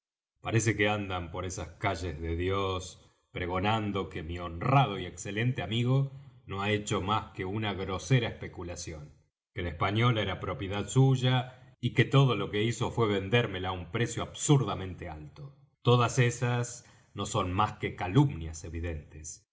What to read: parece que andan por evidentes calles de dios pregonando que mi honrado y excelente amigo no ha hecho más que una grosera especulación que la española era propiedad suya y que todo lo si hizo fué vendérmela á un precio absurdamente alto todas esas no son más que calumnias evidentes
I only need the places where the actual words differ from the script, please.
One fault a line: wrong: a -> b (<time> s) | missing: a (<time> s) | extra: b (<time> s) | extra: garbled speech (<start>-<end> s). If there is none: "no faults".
wrong: evidentes -> esas (1.4 s)
wrong: si -> que (12.5 s)